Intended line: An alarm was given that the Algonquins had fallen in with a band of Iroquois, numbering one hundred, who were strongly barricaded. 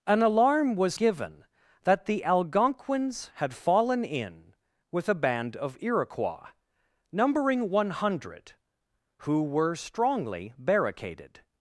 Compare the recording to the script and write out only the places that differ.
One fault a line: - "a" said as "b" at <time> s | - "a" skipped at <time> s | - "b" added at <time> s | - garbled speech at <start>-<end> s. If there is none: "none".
none